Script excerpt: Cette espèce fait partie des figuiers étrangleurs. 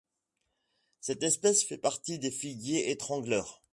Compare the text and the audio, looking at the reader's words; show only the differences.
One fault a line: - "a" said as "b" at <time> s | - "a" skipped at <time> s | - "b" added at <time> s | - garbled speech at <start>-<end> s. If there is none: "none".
none